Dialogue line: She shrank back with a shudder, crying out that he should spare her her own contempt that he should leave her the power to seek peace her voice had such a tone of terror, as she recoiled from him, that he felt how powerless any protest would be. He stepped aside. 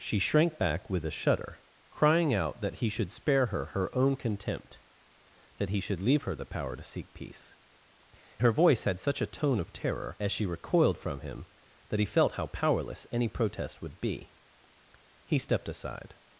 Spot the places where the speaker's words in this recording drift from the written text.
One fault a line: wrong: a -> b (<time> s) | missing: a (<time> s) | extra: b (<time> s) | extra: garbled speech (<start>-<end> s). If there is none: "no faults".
no faults